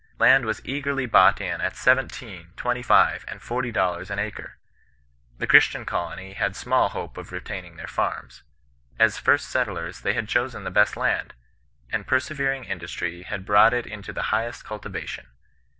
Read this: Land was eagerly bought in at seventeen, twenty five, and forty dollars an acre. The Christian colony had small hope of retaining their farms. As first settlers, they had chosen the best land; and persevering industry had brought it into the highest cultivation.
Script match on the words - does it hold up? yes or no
yes